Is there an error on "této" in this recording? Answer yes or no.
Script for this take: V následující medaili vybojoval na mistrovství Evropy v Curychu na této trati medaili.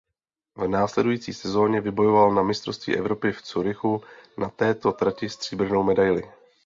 no